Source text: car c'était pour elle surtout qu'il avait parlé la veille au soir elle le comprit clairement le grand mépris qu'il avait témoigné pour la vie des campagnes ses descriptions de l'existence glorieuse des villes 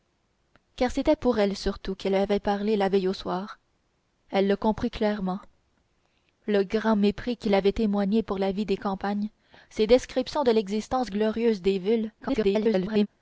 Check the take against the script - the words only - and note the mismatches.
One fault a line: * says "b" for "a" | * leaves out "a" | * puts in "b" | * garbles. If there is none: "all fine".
* garbles